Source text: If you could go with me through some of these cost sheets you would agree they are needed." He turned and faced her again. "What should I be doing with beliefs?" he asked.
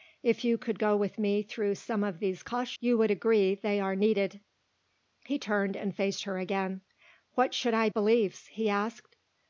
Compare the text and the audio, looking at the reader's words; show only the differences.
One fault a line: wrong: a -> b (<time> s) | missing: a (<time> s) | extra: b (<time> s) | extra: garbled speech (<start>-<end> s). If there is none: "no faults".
missing: sheets (2.7 s)
missing: be doing with (7.9 s)